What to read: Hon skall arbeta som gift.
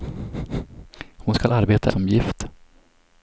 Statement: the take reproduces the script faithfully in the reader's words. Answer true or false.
true